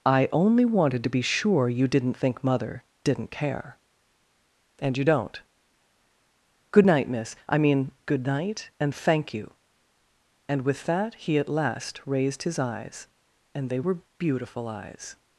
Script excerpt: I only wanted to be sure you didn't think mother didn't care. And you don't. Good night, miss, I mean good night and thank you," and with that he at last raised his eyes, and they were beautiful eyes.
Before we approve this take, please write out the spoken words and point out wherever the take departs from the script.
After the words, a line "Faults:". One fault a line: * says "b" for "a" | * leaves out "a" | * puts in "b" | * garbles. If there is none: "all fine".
I only wanted to be sure you didn't think mother didn't care. And you don't. Good night, miss, I mean good night and thank you," and with that he at last raised his eyes, and they were beautiful eyes.
Faults:
all fine